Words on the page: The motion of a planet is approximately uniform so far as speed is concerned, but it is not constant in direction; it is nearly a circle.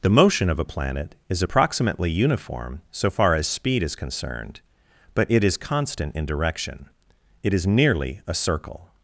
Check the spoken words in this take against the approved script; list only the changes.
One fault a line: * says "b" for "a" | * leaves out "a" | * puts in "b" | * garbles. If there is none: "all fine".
* leaves out "not"